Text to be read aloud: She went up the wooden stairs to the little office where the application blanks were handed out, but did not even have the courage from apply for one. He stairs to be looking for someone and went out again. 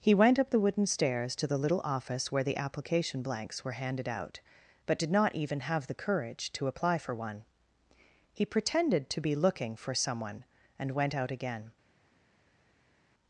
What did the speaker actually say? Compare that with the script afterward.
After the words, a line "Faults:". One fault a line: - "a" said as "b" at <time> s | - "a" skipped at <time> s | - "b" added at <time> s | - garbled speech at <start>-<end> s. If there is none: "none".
He went up the wooden stairs to the little office where the application blanks were handed out, but did not even have the courage to apply for one. He pretended to be looking for someone and went out again.
Faults:
- "She" said as "He" at 0.0 s
- "from" said as "to" at 6.5 s
- "stairs" said as "pretended" at 8.4 s